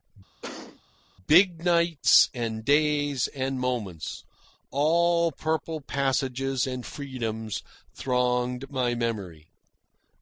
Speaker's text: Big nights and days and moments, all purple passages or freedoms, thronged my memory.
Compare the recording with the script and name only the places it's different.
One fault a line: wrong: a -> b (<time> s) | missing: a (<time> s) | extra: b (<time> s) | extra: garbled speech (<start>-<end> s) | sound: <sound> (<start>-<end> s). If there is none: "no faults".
sound: cough (0.4-0.8 s)
wrong: or -> and (6.7 s)